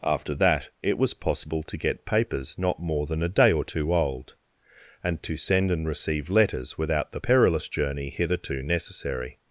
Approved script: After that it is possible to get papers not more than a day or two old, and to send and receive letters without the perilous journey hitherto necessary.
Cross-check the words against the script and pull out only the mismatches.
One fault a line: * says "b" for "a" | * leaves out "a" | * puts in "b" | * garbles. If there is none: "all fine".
* says "was" for "is"